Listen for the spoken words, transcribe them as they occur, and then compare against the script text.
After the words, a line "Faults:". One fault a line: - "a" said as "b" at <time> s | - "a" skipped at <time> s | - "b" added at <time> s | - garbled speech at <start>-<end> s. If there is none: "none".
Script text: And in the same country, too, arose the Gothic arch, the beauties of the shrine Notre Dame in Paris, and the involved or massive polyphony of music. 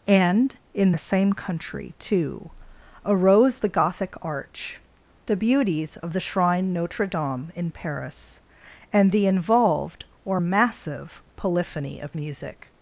And in the same country, too, arose the Gothic arch, the beauties of the shrine Notre Dame in Paris, and the involved or massive polyphony of music.
Faults:
none